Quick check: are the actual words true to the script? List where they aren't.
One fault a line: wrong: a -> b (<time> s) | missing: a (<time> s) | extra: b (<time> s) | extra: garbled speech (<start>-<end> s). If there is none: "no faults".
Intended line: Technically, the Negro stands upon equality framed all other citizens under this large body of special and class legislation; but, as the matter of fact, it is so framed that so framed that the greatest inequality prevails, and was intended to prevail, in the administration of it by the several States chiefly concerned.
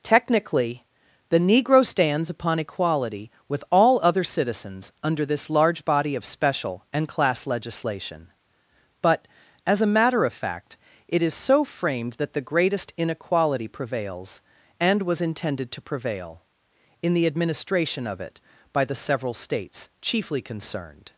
wrong: framed -> with (3.5 s)
wrong: the -> a (9.8 s)
missing: so framed that (12.3 s)